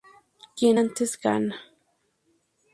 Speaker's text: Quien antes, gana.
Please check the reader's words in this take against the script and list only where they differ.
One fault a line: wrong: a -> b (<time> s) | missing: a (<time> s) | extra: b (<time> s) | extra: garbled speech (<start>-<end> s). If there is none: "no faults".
no faults